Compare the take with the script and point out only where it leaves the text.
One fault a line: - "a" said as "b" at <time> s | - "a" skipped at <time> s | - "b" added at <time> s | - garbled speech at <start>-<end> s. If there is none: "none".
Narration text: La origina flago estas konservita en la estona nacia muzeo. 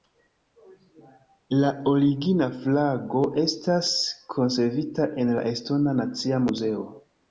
none